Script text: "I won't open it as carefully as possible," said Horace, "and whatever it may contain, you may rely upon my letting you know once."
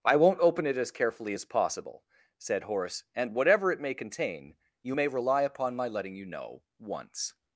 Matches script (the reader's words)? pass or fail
pass